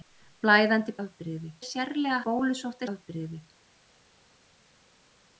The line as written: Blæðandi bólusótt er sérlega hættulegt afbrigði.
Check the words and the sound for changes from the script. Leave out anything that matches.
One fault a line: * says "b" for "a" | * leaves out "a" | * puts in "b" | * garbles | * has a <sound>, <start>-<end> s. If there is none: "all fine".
* says "afbrigði" for "bólusótt"
* says "bólusótt" for "hættulegt"